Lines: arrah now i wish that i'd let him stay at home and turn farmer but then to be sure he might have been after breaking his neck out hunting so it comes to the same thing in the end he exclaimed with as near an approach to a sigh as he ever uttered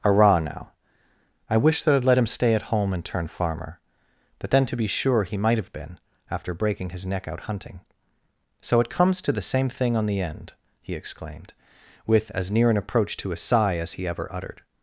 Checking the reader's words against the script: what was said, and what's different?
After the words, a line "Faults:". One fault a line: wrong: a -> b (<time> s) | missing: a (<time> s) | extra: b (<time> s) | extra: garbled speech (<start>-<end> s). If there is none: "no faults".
arrah now i wish that i'd let him stay at home and turn farmer but then to be sure he might have been after breaking his neck out hunting so it comes to the same thing on the end he exclaimed with as near an approach to a sigh as he ever uttered
Faults:
wrong: in -> on (10.0 s)